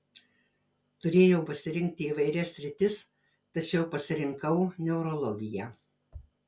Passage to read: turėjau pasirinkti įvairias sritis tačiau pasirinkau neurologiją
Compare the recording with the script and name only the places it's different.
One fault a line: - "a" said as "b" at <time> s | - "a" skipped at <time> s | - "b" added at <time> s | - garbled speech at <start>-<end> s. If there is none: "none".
none